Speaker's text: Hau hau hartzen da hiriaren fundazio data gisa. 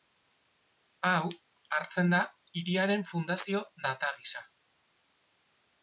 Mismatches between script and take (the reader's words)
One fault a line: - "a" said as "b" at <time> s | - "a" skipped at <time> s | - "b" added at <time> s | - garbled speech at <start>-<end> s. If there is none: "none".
- "hau" skipped at 1.3 s